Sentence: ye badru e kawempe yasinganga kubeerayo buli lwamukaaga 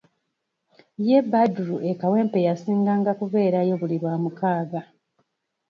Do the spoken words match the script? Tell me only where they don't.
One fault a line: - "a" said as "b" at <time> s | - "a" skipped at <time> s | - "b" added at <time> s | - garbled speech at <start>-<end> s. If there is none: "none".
none